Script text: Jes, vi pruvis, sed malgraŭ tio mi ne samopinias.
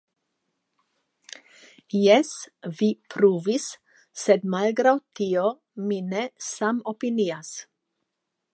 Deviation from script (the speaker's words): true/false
false